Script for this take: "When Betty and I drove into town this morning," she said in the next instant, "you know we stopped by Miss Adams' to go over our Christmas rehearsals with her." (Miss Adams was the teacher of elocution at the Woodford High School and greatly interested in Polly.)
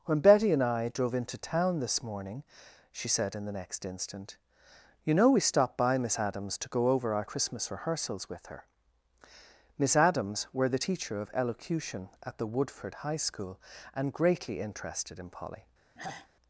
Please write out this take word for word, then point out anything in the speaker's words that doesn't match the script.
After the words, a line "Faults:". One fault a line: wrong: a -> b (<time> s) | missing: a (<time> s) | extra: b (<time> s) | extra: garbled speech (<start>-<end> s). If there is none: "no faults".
"When Betty and I drove into town this morning," she said in the next instant, "you know we stopped by Miss Adams' to go over our Christmas rehearsals with her." (Miss Adams were the teacher of elocution at the Woodford High School and greatly interested in Polly.)
Faults:
wrong: was -> were (10.5 s)